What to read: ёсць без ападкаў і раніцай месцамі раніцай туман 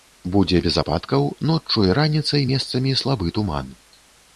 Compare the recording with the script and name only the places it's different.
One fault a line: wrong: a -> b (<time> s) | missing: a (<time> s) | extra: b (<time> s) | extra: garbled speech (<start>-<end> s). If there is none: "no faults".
wrong: ёсць -> будзе (0.3 s)
extra: ноччу (1.5 s)
wrong: раніцай -> слабы (3.0 s)